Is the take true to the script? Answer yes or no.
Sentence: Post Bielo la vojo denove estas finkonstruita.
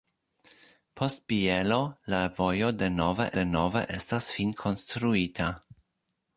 no